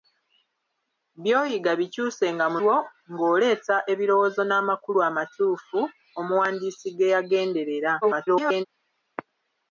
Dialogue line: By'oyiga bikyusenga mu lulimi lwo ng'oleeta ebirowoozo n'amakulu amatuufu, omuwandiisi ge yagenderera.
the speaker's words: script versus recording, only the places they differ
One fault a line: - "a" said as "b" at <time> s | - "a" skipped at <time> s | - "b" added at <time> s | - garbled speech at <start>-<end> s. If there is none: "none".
- "lulimi" skipped at 2.6 s
- garbled speech at 8.0-8.7 s